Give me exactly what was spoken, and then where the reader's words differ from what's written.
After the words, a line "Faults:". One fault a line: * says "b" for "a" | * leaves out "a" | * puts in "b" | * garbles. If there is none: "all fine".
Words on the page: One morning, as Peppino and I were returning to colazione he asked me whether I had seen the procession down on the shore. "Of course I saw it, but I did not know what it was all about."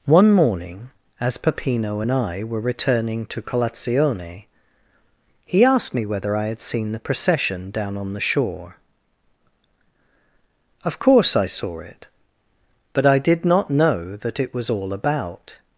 One morning, as Peppino and I were returning to colazione he asked me whether I had seen the procession down on the shore. "Of course I saw it, but I did not know that it was all about."
Faults:
* says "that" for "what"